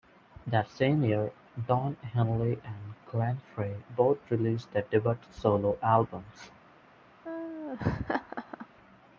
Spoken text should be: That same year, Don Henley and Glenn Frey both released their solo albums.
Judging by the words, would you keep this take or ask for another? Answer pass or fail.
fail